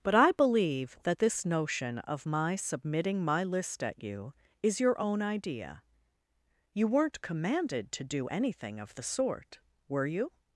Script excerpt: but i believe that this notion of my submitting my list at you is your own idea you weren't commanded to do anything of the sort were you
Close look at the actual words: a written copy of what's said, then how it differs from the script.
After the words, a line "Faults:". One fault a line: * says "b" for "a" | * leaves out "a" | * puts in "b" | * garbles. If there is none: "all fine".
but i believe that this notion of my submitting my list at you is your own idea you weren't commanded to do anything of the sort were you
Faults:
all fine